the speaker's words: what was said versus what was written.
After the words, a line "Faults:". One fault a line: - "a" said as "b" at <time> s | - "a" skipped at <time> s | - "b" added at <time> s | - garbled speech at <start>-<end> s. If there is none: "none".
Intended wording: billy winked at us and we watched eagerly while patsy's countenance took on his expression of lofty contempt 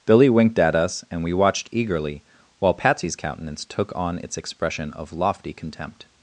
billy winked at us and we watched eagerly while patsy's countenance took on its expression of lofty contempt
Faults:
- "his" said as "its" at 4.2 s